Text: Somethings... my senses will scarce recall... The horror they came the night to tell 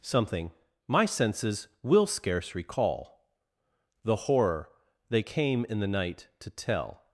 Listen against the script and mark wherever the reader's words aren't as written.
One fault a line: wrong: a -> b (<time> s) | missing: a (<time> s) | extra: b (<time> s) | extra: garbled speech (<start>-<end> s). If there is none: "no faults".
wrong: Somethings -> Something (0.0 s)
extra: in (5.7 s)